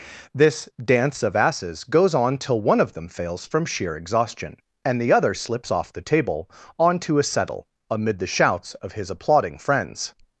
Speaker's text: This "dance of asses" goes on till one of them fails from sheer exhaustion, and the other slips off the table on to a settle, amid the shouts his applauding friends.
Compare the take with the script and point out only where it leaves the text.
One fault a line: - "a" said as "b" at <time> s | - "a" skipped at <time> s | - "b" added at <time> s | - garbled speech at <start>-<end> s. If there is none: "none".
- "of" added at 8.8 s